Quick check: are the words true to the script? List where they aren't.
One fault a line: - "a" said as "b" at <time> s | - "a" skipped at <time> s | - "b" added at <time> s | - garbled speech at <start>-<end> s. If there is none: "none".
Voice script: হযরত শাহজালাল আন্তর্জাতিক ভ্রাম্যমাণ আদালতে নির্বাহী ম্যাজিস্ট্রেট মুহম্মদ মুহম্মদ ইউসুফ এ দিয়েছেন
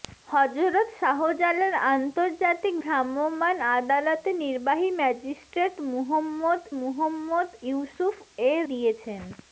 none